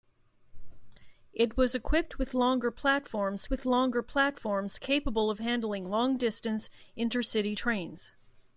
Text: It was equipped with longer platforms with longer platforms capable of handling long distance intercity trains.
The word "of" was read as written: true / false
true